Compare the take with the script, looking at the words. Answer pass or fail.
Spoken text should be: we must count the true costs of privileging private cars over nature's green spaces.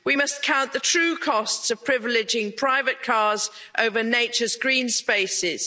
pass